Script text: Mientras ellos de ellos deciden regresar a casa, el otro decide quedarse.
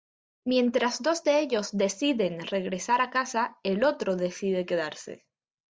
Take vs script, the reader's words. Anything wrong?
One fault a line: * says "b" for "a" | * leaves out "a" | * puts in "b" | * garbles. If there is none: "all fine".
* says "dos" for "ellos"